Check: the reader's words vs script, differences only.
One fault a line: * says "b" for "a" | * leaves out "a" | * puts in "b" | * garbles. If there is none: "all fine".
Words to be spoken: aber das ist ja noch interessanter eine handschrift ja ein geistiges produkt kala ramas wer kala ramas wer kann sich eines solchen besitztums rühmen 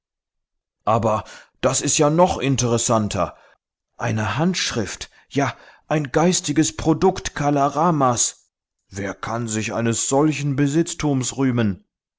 * leaves out "kala ramas wer"